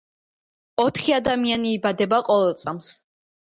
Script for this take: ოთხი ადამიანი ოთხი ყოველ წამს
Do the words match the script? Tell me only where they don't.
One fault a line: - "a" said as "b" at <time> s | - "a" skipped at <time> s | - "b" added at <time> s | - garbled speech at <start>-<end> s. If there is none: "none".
- "ოთხი" said as "იბადება" at 1.8 s